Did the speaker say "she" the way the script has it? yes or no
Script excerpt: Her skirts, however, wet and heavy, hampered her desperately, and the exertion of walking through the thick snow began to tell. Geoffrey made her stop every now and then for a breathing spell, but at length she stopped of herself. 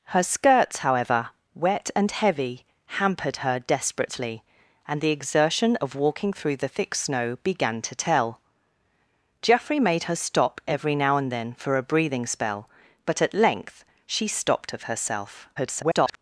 yes